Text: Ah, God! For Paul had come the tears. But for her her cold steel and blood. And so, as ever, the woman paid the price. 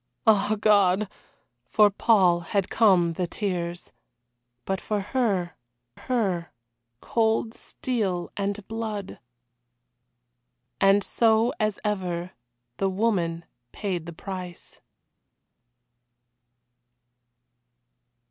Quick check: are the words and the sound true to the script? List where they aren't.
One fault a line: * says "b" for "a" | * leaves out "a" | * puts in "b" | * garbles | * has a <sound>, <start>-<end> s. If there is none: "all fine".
all fine